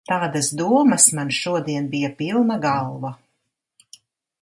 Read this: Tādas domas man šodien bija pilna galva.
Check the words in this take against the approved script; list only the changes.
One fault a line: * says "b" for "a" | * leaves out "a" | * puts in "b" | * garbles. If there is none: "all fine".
all fine